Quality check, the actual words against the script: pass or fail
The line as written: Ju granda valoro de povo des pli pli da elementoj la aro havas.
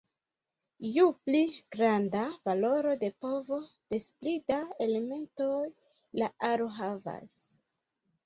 fail